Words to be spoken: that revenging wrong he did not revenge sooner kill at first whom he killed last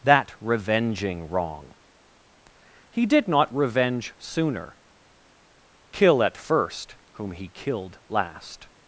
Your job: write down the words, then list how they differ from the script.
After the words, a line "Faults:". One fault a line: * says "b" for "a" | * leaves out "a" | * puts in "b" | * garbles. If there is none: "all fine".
that revenging wrong he did not revenge sooner kill at first whom he killed last
Faults:
all fine